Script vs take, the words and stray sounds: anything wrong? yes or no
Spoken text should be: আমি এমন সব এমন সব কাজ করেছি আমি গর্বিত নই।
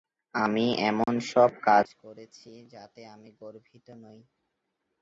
yes